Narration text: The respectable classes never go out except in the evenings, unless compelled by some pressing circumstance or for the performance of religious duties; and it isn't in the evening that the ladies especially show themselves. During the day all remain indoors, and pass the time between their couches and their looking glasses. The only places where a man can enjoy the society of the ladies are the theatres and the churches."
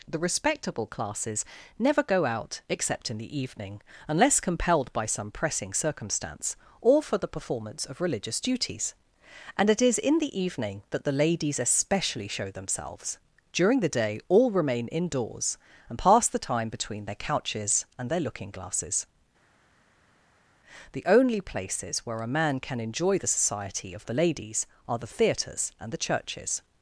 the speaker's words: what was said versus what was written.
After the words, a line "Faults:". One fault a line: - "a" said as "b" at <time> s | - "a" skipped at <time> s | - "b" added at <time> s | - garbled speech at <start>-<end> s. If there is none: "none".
The respectable classes never go out except in the evening, unless compelled by some pressing circumstance or for the performance of religious duties; and it is in the evening that the ladies especially show themselves. During the day all remain indoors, and pass the time between their couches and their looking glasses. The only places where a man can enjoy the society of the ladies are the theatres and the churches."
Faults:
- "evenings" said as "evening" at 3.4 s
- "isn't" said as "is" at 9.8 s